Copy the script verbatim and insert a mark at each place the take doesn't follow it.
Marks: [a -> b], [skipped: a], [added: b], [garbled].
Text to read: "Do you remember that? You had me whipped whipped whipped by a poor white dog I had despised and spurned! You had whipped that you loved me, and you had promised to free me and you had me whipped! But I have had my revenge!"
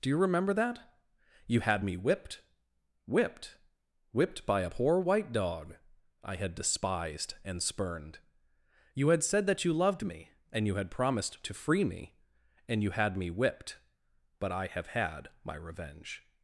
"Do you remember that? You had me whipped whipped whipped by a poor white dog I had despised and spurned! You had [whipped -> said] that you loved me, and you had promised to free me and you had me whipped! But I have had my revenge!"